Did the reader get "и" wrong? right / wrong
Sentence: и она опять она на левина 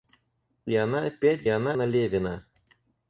right